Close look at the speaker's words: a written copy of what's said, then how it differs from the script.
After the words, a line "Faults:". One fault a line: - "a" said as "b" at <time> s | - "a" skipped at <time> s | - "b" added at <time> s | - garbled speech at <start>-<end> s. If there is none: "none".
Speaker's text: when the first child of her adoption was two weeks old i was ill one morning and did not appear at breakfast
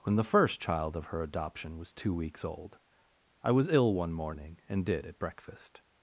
when the first child of her adoption was two weeks old i was ill one morning and did at breakfast
Faults:
- "not appear" skipped at 5.0 s